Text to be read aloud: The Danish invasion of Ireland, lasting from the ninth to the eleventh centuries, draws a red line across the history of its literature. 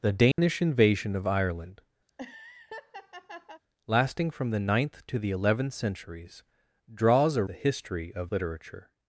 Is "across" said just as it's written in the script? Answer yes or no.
no